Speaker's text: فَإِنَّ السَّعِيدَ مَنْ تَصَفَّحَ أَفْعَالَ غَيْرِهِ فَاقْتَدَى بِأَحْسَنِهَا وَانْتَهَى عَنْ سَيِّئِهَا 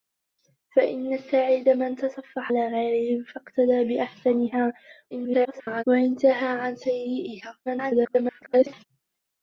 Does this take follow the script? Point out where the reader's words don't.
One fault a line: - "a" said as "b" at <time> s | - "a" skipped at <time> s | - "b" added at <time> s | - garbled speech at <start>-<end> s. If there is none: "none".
- "أَفْعَالَ" skipped at 2.5 s
- garbled speech at 5.1-5.8 s
- garbled speech at 7.7-8.8 s